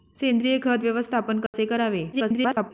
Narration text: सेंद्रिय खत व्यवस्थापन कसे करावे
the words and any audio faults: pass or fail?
fail